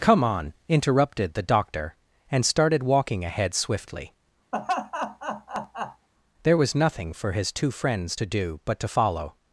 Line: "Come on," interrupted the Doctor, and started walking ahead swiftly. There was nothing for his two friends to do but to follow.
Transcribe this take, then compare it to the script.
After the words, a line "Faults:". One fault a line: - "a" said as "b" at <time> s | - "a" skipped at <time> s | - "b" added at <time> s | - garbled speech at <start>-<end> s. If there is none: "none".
"Come on," interrupted the Doctor, and started walking ahead swiftly. There was nothing for his two friends to do but to follow.
Faults:
none